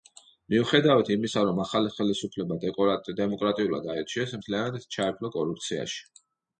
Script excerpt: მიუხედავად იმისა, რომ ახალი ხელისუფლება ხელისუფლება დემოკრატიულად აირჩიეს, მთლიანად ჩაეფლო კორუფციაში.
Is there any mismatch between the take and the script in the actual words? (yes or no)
yes